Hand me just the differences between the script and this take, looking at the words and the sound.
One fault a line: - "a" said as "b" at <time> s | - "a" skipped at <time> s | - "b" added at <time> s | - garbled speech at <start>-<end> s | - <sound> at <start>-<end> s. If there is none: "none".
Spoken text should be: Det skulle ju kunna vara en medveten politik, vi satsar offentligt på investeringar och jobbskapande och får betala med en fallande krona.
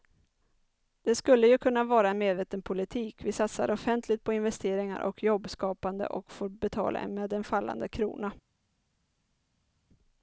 none